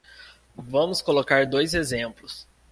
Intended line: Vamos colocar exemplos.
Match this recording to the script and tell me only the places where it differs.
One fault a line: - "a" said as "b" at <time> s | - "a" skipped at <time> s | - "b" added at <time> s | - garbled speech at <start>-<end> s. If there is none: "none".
- "dois" added at 1.4 s